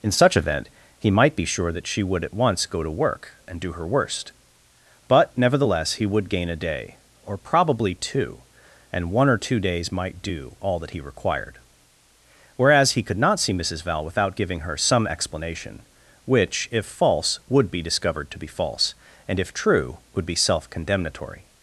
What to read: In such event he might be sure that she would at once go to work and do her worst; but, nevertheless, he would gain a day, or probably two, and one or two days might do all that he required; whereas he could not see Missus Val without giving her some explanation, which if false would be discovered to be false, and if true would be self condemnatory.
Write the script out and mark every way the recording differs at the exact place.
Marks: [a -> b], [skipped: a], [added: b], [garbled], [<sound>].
In such event he might be sure that she would at once go to work and do her worst; but, nevertheless, he would gain a day, or probably two, and one or two days might do all that he required; whereas he could not see Missus Val without giving her some explanation, which if false would be discovered to be false, and if true would be self condemnatory.